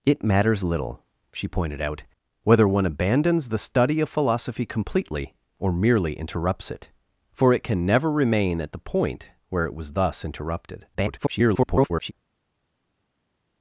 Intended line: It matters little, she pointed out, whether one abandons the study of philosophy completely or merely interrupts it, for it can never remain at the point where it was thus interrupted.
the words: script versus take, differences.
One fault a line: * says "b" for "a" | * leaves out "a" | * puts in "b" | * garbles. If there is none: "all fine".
* garbles